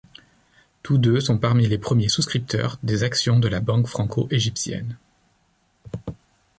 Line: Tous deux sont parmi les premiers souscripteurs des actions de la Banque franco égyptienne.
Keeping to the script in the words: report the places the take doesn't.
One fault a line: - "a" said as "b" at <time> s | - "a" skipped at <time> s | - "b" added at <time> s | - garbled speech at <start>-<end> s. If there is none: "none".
none